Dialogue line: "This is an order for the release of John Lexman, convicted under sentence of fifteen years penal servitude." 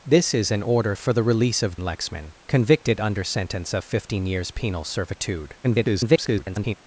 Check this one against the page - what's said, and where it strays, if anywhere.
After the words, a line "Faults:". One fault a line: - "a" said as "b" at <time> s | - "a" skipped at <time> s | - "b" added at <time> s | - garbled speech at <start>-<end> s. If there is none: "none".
"This is an order for the release of Lexman, convicted under sentence of fifteen years penal servitude." [garbled]
Faults:
- "John" skipped at 1.8 s
- garbled speech at 5.6-6.8 s